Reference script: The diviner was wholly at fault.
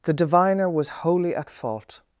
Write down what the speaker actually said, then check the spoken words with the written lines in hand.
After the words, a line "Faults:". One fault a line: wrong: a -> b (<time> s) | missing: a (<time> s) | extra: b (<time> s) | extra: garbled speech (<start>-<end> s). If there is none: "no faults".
The diviner was wholly at fault.
Faults:
no faults